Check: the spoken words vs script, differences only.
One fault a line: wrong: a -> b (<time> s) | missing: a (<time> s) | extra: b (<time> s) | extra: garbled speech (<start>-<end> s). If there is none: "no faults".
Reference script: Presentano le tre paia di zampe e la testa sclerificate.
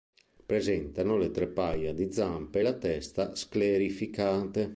no faults